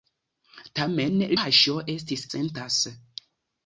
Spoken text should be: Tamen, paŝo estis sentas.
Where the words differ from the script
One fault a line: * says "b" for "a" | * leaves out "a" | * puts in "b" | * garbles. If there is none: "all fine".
all fine